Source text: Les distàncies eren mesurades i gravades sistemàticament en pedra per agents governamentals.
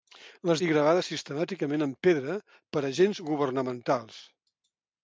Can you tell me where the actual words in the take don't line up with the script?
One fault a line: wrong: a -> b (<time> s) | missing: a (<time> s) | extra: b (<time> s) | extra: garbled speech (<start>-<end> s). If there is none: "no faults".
missing: distàncies eren mesurades (0.6 s)